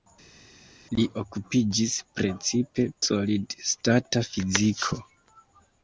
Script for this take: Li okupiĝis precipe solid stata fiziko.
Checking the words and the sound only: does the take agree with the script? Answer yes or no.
yes